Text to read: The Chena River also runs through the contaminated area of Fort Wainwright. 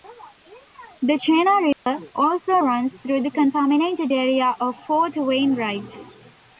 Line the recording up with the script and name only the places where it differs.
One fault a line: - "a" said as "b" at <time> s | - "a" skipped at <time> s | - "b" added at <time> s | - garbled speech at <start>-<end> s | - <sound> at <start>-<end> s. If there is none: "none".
- dropout at 1.7-1.9 s